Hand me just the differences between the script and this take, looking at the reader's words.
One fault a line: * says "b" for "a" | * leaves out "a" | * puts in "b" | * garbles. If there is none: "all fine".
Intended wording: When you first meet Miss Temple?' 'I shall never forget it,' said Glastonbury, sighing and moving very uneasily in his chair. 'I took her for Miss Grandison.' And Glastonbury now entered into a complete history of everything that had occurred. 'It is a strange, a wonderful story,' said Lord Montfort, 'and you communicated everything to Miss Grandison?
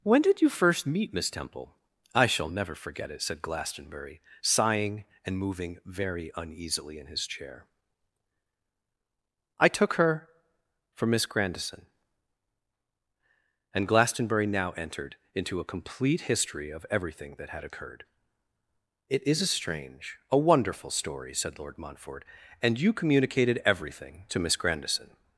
* puts in "did"